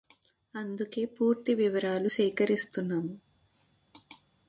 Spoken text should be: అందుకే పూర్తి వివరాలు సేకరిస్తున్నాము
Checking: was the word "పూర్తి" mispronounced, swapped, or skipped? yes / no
no